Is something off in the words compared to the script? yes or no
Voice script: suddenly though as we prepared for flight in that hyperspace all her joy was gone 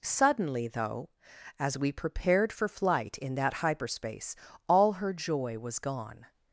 no